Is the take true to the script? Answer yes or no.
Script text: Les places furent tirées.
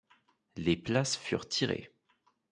yes